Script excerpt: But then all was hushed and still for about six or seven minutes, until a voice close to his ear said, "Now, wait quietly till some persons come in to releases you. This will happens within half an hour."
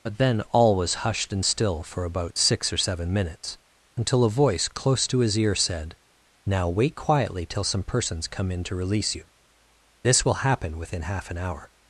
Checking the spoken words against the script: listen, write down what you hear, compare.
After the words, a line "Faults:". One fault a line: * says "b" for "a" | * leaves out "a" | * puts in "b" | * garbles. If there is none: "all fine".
But then all was hushed and still for about six or seven minutes, until a voice close to his ear said, "Now, wait quietly till some persons come in to release you. This will happen within half an hour."
Faults:
* says "release" for "releases"
* says "happen" for "happens"